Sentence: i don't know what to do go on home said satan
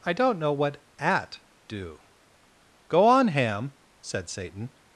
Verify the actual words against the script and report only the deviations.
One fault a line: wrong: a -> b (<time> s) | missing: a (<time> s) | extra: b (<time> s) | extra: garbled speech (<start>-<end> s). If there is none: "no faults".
wrong: to -> at (1.0 s)
wrong: home -> ham (3.3 s)